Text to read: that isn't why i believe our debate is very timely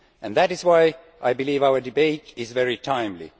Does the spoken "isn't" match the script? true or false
false